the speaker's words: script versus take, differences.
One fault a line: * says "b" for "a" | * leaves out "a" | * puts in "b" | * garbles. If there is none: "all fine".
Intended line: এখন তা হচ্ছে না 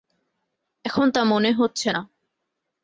* puts in "মনে"